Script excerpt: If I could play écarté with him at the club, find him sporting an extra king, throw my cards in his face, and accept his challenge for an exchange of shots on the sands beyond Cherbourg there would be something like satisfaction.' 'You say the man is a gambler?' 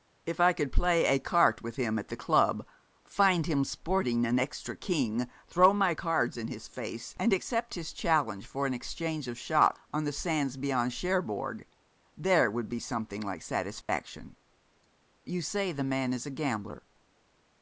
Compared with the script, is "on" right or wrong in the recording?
right